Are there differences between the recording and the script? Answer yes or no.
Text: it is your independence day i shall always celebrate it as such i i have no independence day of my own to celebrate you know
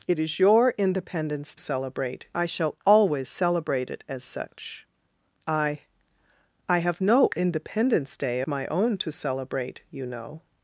yes